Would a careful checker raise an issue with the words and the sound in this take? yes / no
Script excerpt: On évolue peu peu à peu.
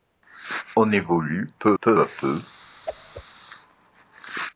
yes